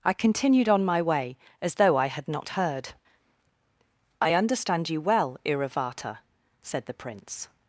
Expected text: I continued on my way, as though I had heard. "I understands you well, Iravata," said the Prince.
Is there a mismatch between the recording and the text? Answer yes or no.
yes